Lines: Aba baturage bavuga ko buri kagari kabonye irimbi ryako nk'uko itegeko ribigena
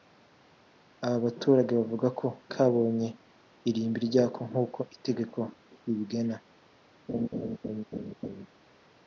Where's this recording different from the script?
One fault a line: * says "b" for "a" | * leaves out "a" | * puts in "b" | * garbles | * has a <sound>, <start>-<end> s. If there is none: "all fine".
* leaves out "buri kagari"
* has a laugh, 7.1-8.5 s